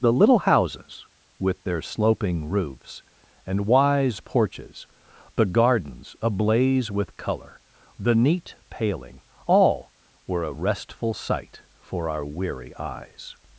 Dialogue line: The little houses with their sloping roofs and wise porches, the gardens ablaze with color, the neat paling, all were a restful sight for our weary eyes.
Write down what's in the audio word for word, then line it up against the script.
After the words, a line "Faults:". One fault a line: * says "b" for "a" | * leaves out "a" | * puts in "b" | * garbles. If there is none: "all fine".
The little houses with their sloping roofs and wise porches, the gardens ablaze with color, the neat paling, all were a restful sight for our weary eyes.
Faults:
all fine